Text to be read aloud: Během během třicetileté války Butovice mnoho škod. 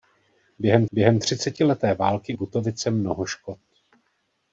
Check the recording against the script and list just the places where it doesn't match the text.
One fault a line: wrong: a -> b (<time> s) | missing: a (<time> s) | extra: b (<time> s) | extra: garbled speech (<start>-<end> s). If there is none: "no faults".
no faults